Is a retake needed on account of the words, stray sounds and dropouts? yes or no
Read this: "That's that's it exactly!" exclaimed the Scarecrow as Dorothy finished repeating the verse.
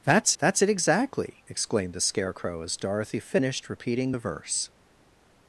no